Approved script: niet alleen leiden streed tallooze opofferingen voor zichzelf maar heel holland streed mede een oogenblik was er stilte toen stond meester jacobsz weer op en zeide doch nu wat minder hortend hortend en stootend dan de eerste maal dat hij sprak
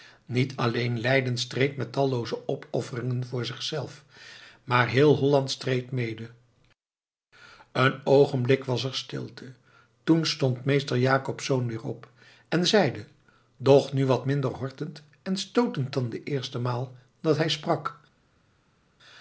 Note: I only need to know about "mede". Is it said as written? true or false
true